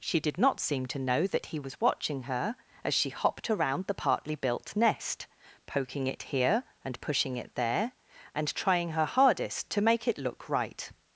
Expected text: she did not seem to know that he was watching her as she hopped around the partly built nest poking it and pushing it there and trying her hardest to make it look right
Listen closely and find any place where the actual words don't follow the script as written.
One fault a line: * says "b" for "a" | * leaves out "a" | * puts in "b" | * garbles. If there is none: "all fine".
* puts in "here"